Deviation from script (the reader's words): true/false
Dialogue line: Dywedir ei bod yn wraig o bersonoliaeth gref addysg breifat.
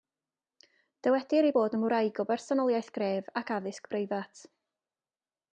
true